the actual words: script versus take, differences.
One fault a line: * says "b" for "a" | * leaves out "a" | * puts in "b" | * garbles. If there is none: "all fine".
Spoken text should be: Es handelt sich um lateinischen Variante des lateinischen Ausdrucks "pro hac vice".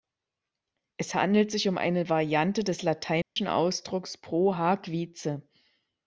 * says "eine" for "lateinischen"